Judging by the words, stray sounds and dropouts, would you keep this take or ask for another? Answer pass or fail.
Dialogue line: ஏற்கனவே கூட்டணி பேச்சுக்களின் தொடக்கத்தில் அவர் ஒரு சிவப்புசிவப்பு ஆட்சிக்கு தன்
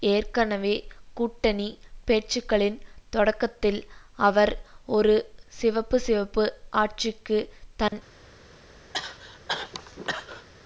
fail